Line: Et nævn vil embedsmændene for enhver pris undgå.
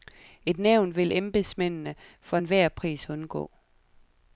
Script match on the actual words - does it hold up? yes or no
yes